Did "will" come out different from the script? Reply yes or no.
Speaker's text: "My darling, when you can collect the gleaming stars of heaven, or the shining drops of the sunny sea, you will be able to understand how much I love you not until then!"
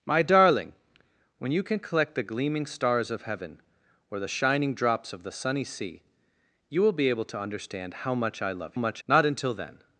no